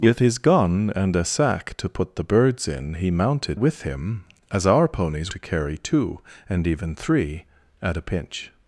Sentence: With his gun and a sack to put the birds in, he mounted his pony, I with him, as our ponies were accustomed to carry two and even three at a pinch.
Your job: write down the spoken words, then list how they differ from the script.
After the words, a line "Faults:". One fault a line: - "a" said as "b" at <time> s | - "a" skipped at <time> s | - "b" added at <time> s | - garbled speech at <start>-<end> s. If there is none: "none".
With his gun and a sack to put the birds in, he mounted with him, as our ponies to carry two and even three at a pinch.
Faults:
- "his pony I" skipped at 3.6 s
- "were accustomed" skipped at 5.3 s